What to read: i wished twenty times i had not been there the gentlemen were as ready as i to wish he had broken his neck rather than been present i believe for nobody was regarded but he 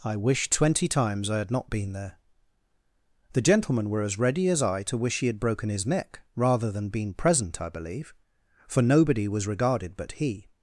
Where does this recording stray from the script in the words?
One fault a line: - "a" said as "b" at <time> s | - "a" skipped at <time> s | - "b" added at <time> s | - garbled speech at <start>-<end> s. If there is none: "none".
none